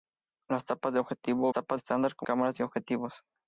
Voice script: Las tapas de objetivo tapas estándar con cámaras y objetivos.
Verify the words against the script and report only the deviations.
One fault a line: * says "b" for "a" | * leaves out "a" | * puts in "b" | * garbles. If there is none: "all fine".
all fine